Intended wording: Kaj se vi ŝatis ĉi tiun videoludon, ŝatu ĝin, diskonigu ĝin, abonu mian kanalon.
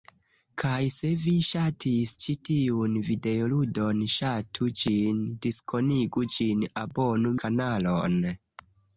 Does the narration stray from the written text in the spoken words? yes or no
yes